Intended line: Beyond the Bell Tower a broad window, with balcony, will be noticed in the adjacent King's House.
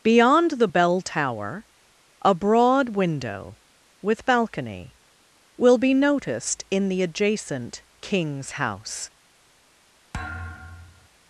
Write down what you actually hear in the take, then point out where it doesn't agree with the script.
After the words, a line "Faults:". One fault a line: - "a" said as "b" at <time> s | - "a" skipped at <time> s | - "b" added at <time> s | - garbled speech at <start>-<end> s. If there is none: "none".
Beyond the Bell Tower a broad window, with balcony, will be noticed in the adjacent King's House.
Faults:
none